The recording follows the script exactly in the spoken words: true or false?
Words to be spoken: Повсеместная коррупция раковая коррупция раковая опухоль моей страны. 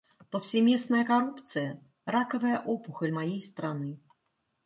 false